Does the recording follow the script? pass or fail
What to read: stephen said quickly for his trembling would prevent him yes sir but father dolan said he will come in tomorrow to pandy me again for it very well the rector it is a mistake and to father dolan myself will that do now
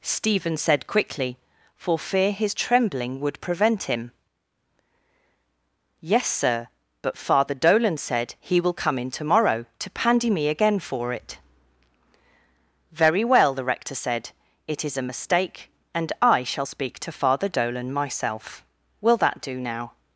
fail